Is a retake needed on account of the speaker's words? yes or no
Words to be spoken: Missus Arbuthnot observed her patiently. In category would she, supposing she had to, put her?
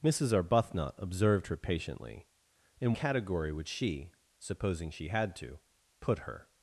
no